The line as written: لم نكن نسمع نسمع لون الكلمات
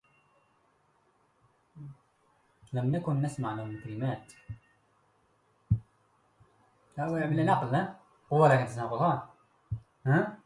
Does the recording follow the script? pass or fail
fail